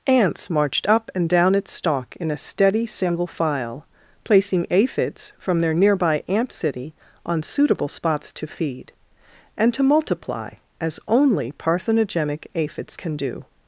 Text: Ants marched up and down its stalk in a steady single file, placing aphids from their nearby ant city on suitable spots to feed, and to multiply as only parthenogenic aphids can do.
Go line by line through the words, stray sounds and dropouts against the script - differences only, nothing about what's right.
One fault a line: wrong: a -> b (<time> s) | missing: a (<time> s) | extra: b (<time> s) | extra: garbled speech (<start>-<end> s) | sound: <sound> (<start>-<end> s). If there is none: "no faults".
no faults